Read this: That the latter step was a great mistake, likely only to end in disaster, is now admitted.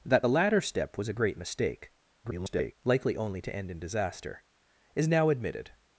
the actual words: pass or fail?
fail